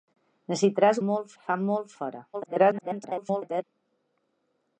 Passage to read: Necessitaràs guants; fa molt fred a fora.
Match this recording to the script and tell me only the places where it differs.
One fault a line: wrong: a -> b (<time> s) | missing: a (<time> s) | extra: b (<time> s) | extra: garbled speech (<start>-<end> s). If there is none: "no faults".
wrong: guants -> molt (1.1 s)
missing: fred (1.9 s)
extra: garbled speech (2.3-3.6 s)